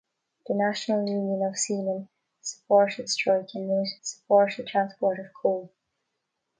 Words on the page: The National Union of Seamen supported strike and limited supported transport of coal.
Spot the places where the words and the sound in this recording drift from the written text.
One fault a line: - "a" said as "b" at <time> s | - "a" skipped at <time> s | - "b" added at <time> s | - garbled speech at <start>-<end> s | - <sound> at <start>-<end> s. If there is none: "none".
none